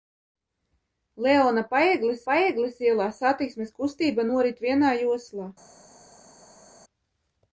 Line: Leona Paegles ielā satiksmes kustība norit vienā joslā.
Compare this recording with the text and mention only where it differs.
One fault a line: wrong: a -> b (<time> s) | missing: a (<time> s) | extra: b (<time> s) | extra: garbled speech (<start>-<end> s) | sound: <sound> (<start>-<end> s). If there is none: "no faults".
extra: Paegles (2.3 s)